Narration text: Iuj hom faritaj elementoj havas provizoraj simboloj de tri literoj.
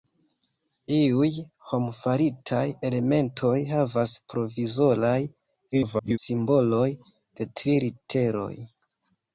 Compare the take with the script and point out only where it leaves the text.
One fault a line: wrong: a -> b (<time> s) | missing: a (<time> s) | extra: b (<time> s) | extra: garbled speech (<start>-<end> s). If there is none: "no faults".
extra: garbled speech (5.7-6.2 s)